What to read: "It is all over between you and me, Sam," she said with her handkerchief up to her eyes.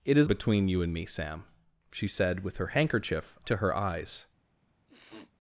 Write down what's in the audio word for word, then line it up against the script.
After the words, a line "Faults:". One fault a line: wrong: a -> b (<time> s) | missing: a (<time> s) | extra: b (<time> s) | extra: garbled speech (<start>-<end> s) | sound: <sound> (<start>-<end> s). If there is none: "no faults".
"It is between you and me, Sam," she said with her handkerchief to her eyes.
Faults:
missing: all over (0.3 s)
missing: up (3.4 s)
sound: sniff (4.9-5.3 s)